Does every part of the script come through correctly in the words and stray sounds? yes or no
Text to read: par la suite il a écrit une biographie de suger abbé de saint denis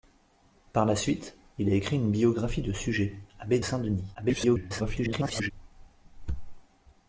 no